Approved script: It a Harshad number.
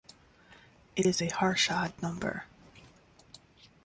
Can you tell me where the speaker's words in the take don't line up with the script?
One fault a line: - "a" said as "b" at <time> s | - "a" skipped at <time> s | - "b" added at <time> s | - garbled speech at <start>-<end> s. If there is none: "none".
- "is" added at 1.0 s